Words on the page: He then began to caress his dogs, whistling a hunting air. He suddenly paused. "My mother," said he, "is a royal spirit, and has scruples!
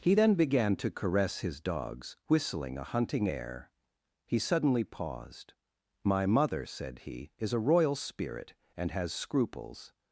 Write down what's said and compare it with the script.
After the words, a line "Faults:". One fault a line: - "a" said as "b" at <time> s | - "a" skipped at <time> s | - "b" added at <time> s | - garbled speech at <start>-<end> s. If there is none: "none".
He then began to caress his dogs, whistling a hunting air. He suddenly paused. "My mother," said he, "is a royal spirit, and has scruples!
Faults:
none